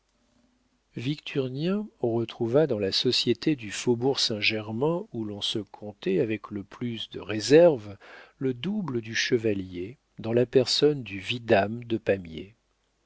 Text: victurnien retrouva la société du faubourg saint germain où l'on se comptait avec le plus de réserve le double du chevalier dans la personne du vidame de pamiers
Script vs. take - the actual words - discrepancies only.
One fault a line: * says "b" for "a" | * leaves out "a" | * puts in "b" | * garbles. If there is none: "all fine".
* puts in "dans"